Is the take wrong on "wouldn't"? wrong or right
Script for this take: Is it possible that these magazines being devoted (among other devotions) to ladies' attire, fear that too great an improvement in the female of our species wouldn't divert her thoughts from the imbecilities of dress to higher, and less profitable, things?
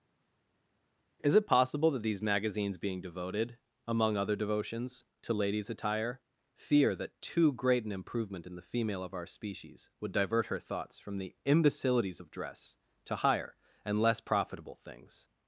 wrong